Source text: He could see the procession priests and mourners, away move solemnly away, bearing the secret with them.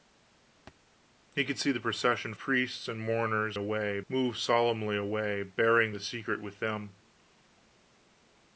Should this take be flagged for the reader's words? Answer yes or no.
no